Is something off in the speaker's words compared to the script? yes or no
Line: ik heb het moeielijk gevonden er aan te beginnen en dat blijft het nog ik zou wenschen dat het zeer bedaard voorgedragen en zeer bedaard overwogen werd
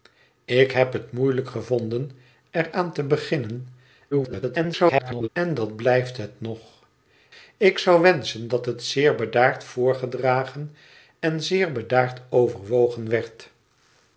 yes